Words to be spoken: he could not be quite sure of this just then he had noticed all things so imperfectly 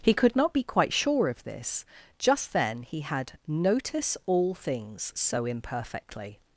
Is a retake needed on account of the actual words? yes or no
yes